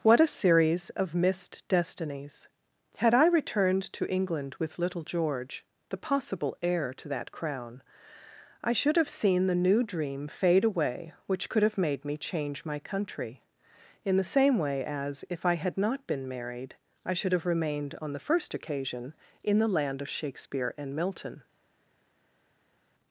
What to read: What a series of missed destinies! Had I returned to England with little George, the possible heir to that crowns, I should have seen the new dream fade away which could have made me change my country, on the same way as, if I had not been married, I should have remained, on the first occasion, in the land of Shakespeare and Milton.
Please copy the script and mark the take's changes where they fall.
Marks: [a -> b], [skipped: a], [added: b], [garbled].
What a series of missed destinies! Had I returned to England with little George, the possible heir to that [crowns, -> crown] I should have seen the new dream fade away which could have made me change my country, [on -> in] the same way as, if I had not been married, I should have remained, on the first occasion, in the land of Shakespeare and Milton.